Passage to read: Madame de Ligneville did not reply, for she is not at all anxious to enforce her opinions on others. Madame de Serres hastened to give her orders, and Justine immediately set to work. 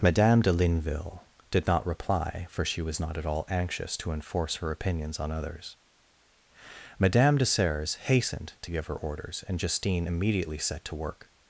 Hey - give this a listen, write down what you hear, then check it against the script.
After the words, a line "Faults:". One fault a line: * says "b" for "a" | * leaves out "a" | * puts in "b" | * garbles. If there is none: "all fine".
Madame de Ligneville did not reply, for she was not at all anxious to enforce her opinions on others. Madame de Serres hastened to give her orders, and Justine immediately set to work.
Faults:
* says "was" for "is"